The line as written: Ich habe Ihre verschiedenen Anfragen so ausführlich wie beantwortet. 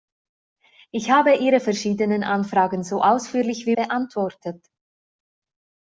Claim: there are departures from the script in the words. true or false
false